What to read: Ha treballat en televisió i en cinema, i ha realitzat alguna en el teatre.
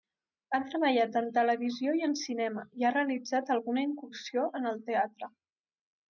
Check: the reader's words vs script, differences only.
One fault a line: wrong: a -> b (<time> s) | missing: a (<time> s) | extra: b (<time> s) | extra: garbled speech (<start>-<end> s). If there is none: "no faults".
extra: incursió (3.9 s)